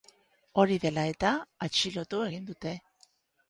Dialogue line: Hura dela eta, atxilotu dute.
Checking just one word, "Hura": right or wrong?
wrong